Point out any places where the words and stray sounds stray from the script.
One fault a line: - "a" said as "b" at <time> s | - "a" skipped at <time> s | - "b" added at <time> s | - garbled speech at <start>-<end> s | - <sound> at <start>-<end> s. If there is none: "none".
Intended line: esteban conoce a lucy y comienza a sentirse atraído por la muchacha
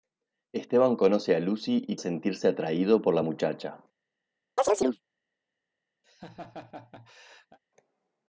- "comienza" skipped at 1.9 s
- chirp at 4.6-5.0 s
- laugh at 6.0-7.6 s